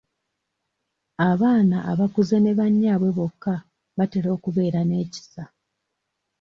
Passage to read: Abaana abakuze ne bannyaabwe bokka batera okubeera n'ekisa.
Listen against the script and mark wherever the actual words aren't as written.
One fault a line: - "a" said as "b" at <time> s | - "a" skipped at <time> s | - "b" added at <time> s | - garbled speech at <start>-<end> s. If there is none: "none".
none